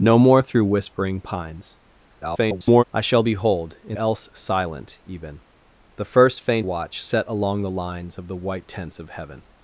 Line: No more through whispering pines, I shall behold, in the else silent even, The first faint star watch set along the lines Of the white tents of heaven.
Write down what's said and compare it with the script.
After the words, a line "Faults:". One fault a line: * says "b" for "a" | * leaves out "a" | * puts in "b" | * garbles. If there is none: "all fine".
No more through whispering pines, [garbled] I shall behold, in else silent even, The first faint watch set along the lines Of the white tents of heaven.
Faults:
* garbles
* leaves out "the"
* leaves out "star"